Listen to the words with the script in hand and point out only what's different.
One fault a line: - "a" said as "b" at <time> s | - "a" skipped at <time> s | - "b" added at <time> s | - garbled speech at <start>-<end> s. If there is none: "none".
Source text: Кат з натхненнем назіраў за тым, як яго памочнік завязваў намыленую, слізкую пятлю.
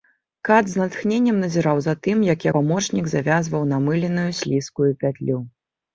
- "яго" skipped at 2.5 s